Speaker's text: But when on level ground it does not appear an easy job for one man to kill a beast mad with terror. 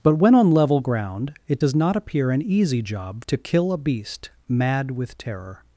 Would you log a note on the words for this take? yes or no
yes